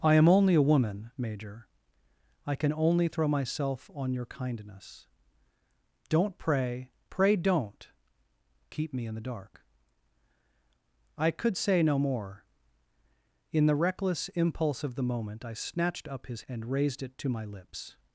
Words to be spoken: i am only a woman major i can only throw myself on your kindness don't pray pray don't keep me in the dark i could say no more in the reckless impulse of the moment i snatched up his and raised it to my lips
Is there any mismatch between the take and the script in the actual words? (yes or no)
no